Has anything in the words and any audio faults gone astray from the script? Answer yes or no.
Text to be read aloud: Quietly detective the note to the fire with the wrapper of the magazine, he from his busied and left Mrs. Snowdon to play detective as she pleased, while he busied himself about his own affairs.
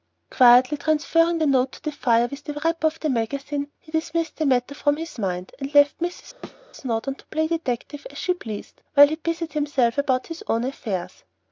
yes